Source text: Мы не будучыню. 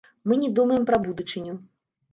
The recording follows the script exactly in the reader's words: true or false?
false